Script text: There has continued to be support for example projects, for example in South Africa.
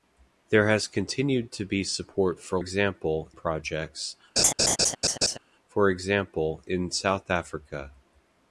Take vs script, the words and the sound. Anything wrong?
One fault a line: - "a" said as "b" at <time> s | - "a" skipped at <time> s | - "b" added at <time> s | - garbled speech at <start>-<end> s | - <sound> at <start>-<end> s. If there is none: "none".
- laugh at 4.4-5.4 s